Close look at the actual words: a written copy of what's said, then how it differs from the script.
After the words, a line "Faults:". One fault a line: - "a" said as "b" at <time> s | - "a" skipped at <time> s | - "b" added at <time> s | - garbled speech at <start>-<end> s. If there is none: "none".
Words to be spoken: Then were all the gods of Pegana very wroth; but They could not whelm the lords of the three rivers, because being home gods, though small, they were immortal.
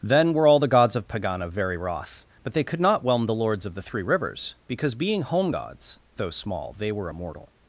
Then were all the gods of Pegana very wroth; but They could not whelm the lords of the three rivers, because being home gods, though small, they were immortal.
Faults:
none